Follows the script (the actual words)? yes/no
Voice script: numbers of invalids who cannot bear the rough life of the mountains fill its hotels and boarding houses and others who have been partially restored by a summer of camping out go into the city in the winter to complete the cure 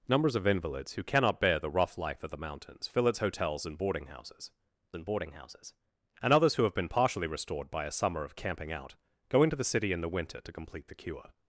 no